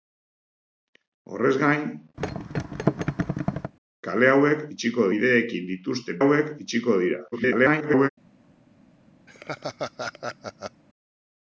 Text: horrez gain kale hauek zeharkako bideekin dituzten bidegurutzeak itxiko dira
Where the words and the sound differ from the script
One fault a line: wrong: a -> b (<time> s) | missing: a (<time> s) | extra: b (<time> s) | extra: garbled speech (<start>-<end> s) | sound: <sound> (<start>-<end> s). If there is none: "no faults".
sound: thud (2.2-3.7 s)
wrong: zeharkako -> itxiko (4.8 s)
wrong: bidegurutzeak -> hauek (6.2 s)
extra: garbled speech (7.3-8.1 s)
sound: laugh (9.3-10.8 s)